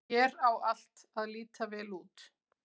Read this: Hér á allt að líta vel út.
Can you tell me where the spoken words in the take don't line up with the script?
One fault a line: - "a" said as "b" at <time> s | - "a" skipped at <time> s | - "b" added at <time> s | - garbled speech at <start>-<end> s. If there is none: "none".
none